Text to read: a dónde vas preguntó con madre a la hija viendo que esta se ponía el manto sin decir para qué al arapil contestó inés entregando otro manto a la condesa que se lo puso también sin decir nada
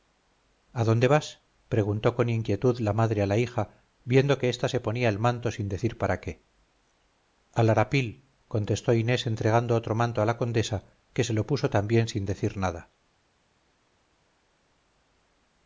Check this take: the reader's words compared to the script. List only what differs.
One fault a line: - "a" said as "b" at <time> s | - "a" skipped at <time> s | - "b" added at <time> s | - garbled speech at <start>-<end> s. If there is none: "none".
- "inquietud la" added at 2.3 s